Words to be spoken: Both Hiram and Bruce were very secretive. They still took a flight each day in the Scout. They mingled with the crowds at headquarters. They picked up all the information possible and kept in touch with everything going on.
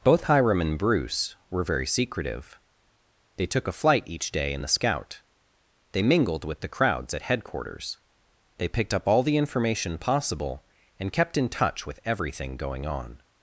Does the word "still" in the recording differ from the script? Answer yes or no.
yes